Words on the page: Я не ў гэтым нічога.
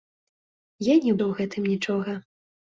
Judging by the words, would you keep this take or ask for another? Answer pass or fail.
pass